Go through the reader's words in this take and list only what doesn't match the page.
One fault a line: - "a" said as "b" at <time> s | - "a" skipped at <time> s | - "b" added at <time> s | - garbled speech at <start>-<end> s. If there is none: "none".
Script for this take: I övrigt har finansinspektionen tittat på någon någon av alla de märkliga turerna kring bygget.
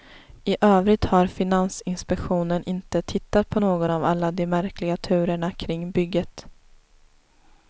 - "inte" added at 2.6 s
- "någon" skipped at 3.9 s